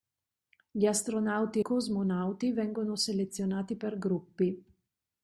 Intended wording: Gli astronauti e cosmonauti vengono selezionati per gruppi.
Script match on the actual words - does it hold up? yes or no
no